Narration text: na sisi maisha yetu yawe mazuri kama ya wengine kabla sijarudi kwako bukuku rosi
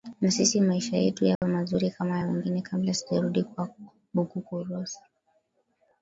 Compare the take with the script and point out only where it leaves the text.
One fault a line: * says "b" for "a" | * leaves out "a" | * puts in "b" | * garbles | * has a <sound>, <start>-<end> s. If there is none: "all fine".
* has a dropout, 1.3-1.4 s